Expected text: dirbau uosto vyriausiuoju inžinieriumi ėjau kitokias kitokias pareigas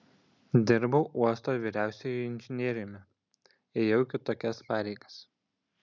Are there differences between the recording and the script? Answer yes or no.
yes